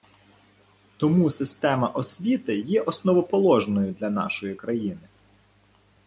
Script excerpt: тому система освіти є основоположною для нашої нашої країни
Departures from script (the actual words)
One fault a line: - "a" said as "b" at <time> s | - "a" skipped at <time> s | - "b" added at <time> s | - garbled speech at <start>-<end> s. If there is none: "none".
- "нашої" skipped at 4.6 s